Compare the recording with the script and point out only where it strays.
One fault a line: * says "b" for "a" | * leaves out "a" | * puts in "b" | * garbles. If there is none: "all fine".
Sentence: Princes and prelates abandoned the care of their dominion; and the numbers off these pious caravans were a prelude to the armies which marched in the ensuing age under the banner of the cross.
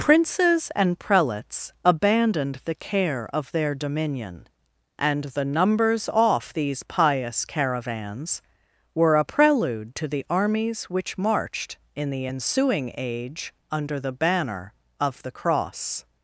all fine